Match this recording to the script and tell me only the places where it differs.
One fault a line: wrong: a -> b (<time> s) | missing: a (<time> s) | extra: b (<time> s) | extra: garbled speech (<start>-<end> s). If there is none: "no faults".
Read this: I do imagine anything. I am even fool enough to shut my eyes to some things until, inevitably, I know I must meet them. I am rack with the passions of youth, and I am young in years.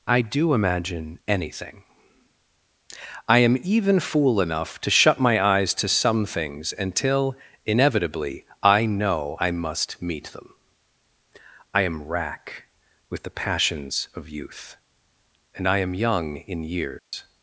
no faults